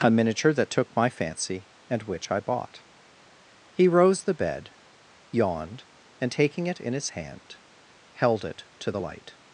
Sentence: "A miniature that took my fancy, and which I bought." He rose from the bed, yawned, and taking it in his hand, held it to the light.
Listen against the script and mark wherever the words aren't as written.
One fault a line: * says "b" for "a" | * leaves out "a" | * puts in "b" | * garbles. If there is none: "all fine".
* leaves out "from"